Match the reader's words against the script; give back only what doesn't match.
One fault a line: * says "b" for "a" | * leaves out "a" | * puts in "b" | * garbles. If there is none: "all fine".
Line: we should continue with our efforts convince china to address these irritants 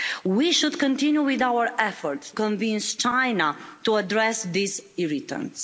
all fine